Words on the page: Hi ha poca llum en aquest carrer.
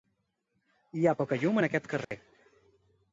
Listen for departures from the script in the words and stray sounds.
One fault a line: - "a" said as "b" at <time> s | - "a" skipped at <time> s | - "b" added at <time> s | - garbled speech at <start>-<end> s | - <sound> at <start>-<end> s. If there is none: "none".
- dropout at 2.0-2.1 s